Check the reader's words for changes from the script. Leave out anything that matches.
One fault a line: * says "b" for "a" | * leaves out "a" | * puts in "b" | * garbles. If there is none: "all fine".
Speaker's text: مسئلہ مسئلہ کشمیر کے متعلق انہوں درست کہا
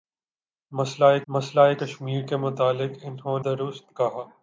all fine